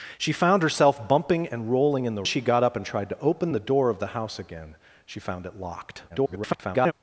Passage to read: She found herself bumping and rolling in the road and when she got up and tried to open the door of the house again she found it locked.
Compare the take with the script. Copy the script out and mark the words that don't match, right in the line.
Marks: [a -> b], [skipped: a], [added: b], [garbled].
She found herself bumping and rolling in the [skipped: road and when] she got up and tried to open the door of the house again she found it locked. [garbled]